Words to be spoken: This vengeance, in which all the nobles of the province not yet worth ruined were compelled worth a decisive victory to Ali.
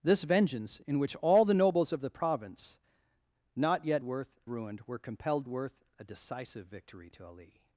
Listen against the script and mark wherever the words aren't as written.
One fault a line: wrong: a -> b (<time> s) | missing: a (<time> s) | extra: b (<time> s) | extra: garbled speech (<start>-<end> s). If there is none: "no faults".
no faults